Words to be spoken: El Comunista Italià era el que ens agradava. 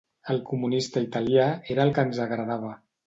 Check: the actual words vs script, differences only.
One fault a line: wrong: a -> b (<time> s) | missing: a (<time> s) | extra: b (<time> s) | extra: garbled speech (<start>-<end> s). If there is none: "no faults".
no faults